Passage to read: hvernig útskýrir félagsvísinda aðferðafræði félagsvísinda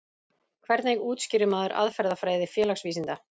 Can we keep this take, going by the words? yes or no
no